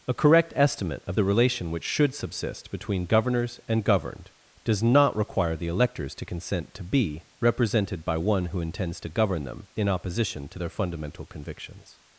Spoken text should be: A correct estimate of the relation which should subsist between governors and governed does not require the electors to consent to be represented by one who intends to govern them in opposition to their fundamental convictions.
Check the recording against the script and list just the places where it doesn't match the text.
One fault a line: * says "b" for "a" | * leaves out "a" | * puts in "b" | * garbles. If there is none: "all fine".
all fine